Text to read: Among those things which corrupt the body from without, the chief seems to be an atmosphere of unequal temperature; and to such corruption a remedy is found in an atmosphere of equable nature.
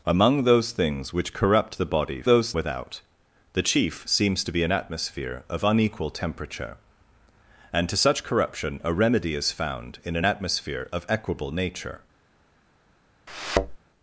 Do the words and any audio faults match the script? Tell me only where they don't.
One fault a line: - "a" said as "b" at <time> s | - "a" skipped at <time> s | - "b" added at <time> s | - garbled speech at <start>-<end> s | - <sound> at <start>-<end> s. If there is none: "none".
- "from" said as "those" at 2.3 s
- thud at 13.3-13.8 s